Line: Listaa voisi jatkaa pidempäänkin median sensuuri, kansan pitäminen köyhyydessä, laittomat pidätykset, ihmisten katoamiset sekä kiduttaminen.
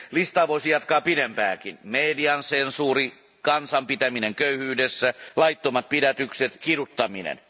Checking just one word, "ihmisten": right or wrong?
wrong